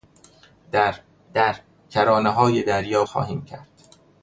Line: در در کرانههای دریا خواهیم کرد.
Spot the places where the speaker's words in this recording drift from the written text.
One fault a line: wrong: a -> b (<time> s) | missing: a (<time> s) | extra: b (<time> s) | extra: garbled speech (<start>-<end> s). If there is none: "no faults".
no faults